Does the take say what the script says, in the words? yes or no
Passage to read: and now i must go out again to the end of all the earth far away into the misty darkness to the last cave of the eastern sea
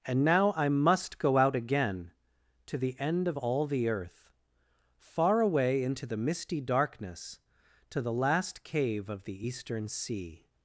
yes